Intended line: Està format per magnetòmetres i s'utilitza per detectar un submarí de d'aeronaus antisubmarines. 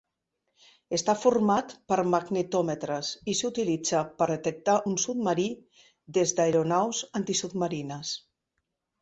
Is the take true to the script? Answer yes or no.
no